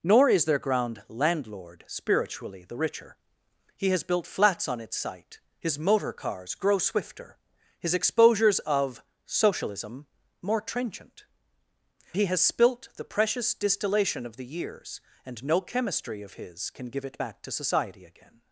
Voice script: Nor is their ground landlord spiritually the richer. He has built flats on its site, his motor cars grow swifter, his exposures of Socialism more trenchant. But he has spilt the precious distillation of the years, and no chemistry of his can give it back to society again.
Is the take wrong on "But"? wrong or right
wrong